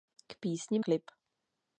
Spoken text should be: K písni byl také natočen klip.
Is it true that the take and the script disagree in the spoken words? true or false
true